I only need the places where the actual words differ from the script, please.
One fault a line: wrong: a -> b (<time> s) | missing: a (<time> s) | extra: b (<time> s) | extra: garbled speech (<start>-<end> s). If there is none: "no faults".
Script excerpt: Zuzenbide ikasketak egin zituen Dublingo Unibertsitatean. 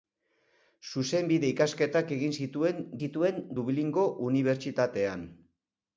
extra: zituen (3.0 s)